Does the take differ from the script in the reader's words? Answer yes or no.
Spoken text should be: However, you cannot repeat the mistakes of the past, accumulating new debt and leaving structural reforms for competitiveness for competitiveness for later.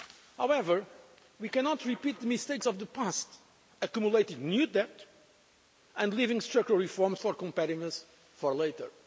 yes